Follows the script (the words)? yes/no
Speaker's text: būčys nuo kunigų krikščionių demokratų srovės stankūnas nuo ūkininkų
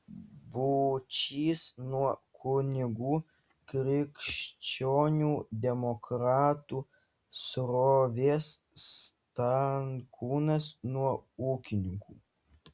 yes